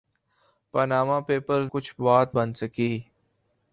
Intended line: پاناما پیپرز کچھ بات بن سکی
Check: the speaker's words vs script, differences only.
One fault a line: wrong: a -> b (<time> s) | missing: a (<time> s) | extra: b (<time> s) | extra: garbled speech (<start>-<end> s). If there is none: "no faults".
no faults